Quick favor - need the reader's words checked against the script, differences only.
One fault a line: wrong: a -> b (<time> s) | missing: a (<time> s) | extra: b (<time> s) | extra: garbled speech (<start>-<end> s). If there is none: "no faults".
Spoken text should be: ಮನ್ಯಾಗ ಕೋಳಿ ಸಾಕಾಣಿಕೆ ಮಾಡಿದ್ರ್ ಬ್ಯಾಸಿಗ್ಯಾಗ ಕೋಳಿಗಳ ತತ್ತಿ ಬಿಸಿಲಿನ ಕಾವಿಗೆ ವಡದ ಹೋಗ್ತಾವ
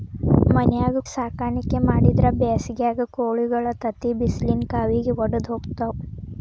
missing: ಕೋಳಿ (1.0 s)